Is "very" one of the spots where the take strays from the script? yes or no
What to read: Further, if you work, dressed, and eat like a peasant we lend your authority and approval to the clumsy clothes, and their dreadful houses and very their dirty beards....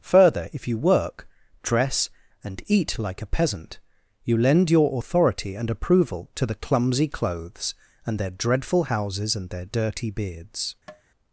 yes